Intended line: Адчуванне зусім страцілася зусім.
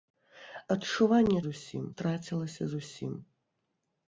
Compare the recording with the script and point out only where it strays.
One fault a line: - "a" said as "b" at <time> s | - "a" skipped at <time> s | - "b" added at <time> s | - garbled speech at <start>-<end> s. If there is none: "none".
none